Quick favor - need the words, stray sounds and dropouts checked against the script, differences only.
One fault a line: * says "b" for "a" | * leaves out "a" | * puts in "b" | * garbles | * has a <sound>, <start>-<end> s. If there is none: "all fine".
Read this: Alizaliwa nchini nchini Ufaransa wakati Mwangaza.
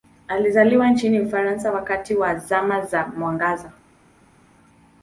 * leaves out "nchini"
* puts in "wa Zama za"